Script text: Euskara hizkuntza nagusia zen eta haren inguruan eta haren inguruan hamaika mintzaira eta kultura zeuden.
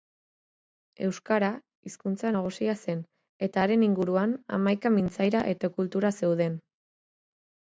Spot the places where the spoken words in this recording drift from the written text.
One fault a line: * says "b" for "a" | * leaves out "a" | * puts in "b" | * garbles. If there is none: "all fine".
* leaves out "eta haren inguruan"